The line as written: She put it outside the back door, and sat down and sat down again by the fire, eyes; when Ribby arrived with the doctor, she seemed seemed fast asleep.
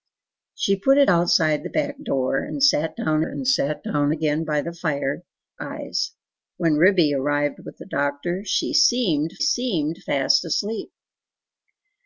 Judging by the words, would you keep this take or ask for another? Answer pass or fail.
pass